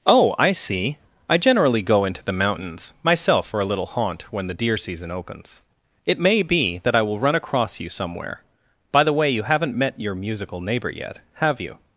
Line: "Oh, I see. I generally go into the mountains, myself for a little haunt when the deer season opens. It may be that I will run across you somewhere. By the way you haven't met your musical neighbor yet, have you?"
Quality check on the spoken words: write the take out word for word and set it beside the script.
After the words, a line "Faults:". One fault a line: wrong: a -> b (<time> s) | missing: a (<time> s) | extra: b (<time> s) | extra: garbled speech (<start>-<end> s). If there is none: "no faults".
"Oh, I see. I generally go into the mountains, myself for a little haunt when the deer season opens. It may be that I will run across you somewhere. By the way you haven't met your musical neighbor yet, have you?"
Faults:
no faults